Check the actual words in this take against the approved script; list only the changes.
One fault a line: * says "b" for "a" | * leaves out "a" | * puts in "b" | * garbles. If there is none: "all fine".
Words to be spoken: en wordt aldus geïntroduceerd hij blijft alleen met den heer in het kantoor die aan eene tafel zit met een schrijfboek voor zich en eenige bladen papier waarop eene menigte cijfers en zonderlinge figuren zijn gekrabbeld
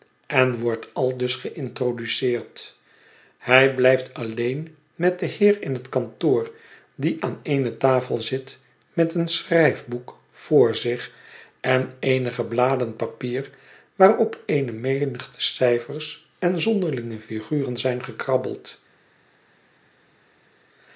all fine